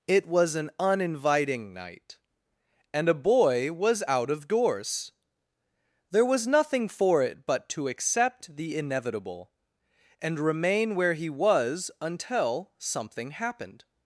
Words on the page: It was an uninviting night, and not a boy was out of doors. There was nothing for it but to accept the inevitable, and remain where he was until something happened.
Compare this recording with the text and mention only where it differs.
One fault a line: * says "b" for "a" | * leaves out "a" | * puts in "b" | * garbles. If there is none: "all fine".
* leaves out "not"